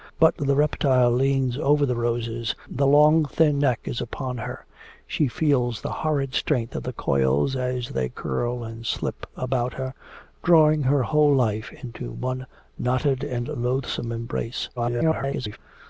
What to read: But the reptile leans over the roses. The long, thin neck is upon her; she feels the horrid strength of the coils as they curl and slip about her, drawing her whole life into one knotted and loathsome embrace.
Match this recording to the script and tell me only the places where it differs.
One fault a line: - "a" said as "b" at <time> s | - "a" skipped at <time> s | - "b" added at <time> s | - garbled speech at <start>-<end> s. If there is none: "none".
- garbled speech at 14.8-15.6 s